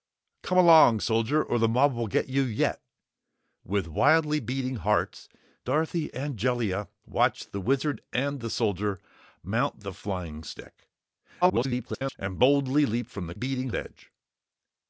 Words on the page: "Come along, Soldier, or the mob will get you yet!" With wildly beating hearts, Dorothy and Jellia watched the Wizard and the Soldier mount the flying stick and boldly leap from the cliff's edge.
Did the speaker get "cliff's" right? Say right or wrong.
wrong